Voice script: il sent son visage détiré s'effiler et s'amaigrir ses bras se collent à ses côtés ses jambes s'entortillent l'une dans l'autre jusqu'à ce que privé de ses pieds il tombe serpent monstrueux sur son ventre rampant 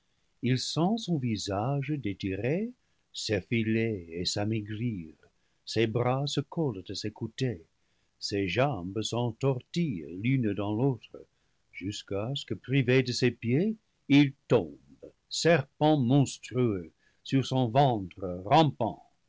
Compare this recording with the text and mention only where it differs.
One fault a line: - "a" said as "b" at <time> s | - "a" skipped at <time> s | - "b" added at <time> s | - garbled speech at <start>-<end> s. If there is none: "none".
none